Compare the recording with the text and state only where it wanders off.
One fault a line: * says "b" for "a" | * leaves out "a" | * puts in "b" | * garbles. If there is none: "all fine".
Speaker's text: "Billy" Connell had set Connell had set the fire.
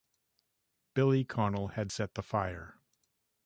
* leaves out "Connell had set"